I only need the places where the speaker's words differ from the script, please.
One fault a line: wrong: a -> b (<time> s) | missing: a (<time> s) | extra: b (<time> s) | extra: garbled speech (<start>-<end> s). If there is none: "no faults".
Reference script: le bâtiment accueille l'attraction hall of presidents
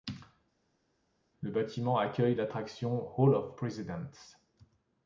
no faults